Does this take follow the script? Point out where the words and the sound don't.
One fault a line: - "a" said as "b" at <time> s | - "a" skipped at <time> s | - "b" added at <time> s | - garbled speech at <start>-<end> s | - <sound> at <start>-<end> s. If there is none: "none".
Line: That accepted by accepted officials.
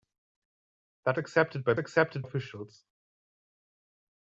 none